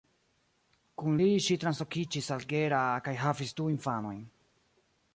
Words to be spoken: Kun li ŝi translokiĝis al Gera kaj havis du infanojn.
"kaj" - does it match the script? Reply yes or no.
yes